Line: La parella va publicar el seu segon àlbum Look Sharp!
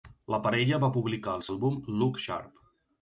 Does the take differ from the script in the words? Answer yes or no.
yes